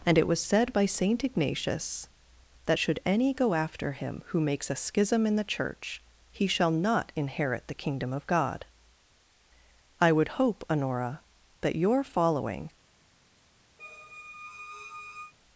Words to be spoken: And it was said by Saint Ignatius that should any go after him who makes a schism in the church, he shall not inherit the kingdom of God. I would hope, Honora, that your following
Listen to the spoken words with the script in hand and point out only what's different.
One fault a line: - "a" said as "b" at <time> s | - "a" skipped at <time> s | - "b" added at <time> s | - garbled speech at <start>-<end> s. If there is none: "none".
none